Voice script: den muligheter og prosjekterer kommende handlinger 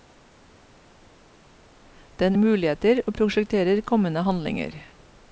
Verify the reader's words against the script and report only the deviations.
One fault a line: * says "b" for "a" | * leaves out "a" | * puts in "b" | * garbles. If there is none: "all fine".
all fine